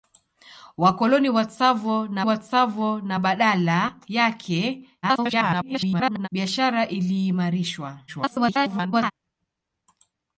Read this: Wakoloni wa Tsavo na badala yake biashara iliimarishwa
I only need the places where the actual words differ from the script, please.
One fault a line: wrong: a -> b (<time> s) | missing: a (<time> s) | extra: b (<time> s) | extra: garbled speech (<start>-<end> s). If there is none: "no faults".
extra: wa Tsavo na (2.2 s)
extra: garbled speech (5.0-6.3 s)
extra: garbled speech (8.1-9.1 s)